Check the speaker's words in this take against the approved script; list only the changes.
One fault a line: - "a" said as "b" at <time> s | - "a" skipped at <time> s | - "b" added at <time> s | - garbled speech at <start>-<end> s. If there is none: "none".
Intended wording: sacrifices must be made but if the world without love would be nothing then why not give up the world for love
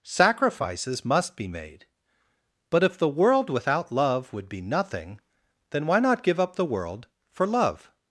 none